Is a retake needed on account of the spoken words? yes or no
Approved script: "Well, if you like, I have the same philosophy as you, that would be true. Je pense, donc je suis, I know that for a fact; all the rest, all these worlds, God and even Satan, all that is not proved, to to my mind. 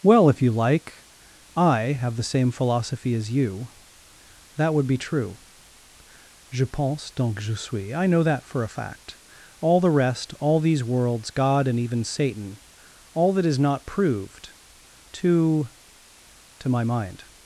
no